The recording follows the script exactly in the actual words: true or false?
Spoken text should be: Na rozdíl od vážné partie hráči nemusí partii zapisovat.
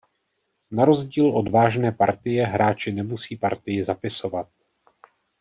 true